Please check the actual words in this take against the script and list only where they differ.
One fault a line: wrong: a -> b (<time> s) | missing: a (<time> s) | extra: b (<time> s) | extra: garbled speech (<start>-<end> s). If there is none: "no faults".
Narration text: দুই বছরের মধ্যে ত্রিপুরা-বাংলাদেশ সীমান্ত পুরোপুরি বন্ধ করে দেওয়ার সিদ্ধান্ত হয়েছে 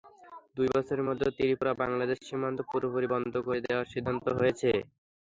no faults